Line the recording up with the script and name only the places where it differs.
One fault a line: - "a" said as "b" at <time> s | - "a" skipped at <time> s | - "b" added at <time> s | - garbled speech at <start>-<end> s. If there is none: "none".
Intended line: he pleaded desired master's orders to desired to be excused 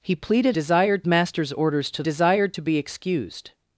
none